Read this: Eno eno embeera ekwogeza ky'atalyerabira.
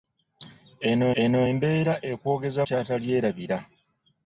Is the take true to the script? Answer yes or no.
yes